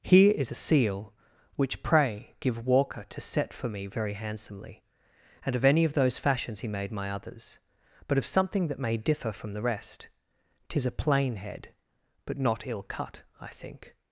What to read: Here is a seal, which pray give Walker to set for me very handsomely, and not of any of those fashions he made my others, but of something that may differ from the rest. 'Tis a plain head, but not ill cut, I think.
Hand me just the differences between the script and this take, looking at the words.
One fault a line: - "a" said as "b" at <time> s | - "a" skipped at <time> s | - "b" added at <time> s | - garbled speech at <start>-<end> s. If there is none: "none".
- "not" skipped at 5.5 s